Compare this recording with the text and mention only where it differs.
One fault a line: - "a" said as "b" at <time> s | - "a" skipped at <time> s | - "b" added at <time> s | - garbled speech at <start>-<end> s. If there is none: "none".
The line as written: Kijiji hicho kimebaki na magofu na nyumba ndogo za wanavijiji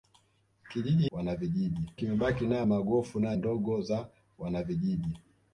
- "hicho" said as "wanavijiji" at 1.1 s
- "nyumba" skipped at 3.4 s